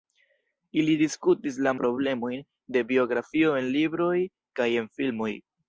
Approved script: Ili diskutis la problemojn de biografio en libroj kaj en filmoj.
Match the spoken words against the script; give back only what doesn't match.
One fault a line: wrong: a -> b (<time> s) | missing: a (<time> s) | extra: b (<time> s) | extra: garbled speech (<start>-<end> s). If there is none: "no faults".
no faults